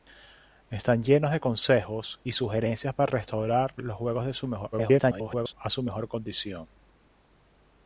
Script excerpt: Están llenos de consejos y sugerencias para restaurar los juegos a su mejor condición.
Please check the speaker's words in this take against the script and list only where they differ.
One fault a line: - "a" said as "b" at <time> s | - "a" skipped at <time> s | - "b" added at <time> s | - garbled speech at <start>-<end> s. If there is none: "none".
- garbled speech at 4.7-5.5 s